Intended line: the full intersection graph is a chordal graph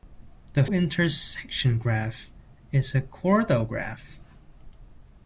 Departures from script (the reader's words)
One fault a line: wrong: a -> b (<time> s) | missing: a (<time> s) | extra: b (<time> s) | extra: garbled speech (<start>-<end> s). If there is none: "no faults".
missing: full (0.7 s)